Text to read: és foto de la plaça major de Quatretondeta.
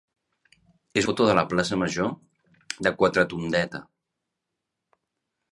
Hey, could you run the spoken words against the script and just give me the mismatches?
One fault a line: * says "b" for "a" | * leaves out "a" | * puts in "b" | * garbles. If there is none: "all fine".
all fine